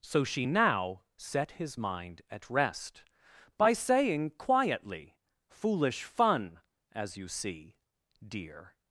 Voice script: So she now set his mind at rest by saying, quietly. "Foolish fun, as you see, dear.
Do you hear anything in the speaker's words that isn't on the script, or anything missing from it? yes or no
no